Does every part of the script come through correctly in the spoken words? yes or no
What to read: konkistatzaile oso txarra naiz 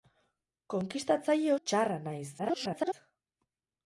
no